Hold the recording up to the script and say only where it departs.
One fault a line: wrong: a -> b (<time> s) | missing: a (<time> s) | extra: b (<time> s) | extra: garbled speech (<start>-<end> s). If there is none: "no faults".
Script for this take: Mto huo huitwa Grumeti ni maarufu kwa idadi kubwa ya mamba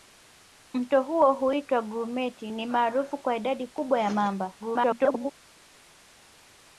extra: garbled speech (4.6-5.3 s)